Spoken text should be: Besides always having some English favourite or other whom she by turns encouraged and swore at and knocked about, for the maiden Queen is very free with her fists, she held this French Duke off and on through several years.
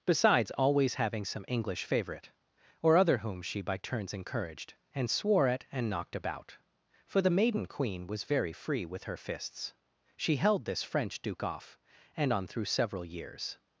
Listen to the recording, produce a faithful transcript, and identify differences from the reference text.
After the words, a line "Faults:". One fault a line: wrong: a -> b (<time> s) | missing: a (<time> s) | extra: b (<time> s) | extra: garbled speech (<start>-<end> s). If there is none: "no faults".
Besides always having some English favourite or other whom she by turns encouraged and swore at and knocked about, for the maiden Queen was very free with her fists, she held this French Duke off and on through several years.
Faults:
wrong: is -> was (8.1 s)